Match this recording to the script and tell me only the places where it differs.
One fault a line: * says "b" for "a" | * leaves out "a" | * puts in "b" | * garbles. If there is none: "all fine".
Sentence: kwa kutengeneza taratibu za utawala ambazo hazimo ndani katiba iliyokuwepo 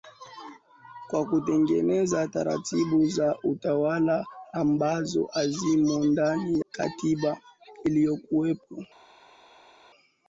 all fine